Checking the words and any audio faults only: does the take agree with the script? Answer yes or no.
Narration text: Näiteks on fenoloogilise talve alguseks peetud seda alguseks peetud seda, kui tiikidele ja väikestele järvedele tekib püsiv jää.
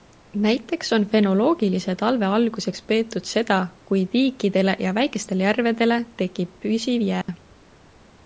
no